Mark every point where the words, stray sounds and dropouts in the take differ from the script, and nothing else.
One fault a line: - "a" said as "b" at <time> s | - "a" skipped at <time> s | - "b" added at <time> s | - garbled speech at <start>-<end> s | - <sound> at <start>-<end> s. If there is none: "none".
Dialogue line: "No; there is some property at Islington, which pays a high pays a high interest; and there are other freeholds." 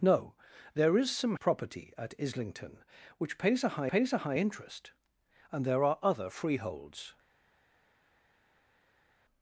none